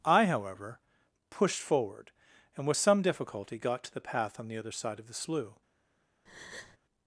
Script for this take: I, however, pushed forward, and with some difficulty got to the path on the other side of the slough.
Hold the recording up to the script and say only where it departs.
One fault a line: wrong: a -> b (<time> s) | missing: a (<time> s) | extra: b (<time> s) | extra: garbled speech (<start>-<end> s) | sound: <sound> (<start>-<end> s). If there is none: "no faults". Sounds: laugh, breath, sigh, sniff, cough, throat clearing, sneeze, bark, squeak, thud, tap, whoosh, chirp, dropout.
sound: breath (6.3-6.8 s)